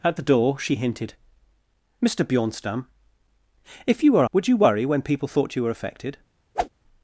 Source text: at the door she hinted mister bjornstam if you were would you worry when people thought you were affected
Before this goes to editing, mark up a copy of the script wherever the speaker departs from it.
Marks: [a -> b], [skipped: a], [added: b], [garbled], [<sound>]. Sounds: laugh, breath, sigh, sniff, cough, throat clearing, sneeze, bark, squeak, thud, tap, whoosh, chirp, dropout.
at the door she hinted mister bjornstam if you were would you worry when people thought you were affected [whoosh]